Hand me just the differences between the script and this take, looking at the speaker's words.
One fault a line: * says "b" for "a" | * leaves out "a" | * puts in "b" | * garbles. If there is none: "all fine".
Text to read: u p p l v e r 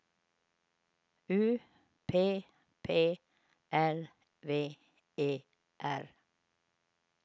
all fine